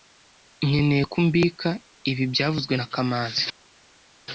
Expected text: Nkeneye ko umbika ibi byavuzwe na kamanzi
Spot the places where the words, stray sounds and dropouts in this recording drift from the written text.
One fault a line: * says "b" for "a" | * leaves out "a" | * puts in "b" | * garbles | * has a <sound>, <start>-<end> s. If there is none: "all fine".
all fine